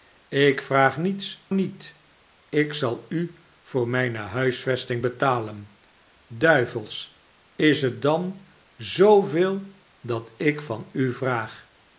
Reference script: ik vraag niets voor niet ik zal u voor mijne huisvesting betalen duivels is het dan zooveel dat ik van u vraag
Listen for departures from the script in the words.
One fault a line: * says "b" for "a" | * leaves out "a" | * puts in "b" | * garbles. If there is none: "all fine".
* leaves out "voor"